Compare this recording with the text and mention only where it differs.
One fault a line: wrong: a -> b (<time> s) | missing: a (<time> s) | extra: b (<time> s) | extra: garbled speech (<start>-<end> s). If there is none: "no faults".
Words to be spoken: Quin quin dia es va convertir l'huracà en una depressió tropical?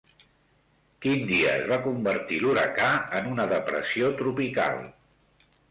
missing: quin (1.3 s)